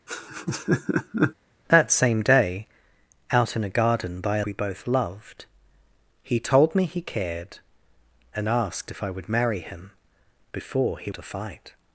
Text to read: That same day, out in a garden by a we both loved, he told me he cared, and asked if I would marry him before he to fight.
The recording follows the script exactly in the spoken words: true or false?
true